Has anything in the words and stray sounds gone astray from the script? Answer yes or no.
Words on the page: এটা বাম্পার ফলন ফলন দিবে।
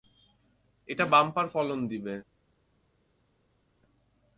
yes